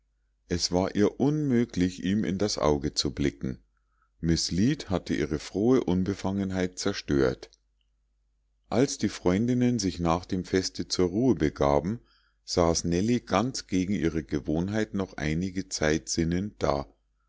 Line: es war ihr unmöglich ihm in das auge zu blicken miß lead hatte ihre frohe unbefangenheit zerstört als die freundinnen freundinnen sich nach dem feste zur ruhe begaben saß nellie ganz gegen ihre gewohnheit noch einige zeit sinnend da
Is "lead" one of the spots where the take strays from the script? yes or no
no